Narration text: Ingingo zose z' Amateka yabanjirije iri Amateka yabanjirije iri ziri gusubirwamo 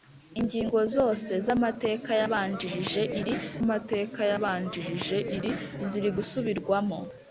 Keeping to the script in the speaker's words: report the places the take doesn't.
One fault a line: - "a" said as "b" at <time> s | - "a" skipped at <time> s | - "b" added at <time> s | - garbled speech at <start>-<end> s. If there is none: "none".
none